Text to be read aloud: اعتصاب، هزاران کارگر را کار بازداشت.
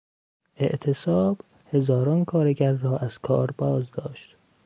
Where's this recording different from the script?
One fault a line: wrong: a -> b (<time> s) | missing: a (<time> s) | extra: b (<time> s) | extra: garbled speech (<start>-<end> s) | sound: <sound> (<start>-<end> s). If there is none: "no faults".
extra: از (3.0 s)